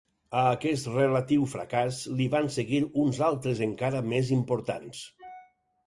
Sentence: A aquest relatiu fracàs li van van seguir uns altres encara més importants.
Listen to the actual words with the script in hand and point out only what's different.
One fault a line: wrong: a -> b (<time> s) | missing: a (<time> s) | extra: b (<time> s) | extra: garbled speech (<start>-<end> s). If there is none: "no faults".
missing: van (2.5 s)